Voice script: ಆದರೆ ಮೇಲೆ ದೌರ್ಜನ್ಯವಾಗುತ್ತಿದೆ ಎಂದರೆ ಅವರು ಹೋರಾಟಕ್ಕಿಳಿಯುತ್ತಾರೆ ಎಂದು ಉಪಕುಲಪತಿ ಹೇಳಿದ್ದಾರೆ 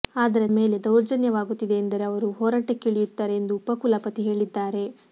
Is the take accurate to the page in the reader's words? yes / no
yes